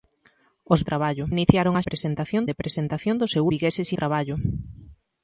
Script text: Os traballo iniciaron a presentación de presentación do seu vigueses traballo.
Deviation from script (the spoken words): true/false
false